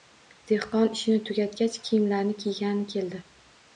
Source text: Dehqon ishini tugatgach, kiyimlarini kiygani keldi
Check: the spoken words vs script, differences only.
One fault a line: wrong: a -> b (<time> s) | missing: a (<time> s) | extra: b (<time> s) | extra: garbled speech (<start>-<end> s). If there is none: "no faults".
no faults